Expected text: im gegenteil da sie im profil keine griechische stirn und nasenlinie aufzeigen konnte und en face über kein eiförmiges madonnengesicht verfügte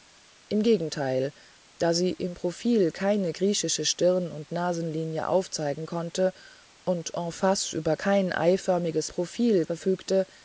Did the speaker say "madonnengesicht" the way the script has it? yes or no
no